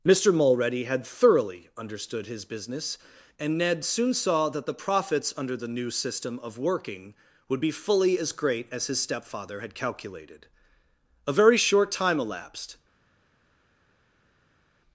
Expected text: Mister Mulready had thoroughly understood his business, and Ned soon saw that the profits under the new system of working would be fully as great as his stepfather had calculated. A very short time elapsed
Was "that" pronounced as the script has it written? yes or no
yes